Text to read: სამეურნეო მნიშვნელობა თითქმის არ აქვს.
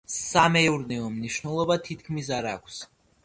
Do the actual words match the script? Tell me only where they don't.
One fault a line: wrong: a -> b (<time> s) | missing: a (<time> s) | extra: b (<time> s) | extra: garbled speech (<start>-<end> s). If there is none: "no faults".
no faults